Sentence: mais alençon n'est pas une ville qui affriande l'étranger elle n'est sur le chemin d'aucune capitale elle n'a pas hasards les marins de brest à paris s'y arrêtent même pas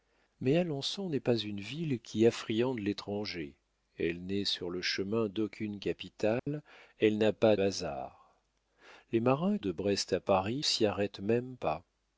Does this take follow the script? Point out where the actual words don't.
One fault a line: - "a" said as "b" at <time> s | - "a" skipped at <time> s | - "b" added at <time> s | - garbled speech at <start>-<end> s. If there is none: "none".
none